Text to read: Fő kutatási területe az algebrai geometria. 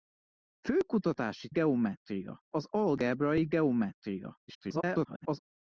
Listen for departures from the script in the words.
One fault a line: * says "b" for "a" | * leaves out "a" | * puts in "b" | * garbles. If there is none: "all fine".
* says "geometria" for "területe"
* garbles